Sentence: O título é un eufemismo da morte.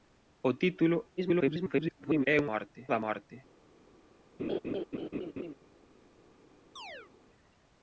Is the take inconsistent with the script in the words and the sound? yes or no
yes